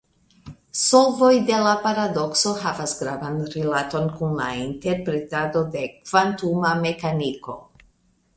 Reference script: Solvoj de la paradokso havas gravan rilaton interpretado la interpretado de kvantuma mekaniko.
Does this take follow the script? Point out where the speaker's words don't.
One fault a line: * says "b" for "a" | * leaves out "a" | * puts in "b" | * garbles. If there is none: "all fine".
* says "kun" for "interpretado"